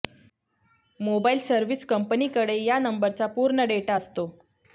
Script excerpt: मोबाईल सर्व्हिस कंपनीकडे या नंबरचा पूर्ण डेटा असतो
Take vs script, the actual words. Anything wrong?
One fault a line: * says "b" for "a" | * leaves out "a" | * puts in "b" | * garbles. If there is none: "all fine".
all fine